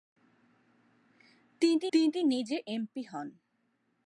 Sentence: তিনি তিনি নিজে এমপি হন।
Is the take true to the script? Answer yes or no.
yes